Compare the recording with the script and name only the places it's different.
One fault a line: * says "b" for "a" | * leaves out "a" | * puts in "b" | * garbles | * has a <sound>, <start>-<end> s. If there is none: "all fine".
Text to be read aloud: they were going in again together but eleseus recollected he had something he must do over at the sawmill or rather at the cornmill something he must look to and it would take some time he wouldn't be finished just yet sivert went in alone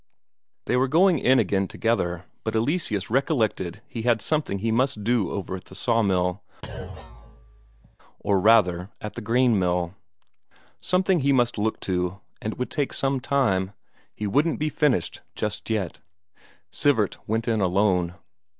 * has a thud, 6.6-8.0 s